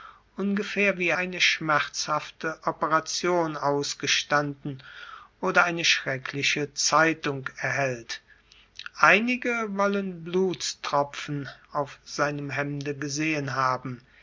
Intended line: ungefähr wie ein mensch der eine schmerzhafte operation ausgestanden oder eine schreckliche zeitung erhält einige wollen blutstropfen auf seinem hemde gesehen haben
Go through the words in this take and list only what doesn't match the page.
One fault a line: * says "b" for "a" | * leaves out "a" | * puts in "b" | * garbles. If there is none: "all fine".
* leaves out "ein mensch der"